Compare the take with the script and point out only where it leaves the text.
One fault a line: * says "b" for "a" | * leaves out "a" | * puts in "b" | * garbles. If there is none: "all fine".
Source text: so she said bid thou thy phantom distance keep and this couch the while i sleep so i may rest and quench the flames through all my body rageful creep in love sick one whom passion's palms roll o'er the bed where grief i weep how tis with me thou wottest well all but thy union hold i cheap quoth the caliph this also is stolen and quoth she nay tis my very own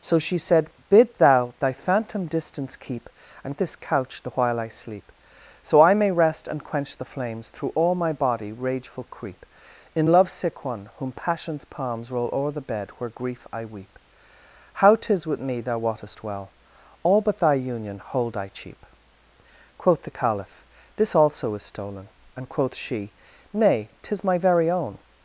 all fine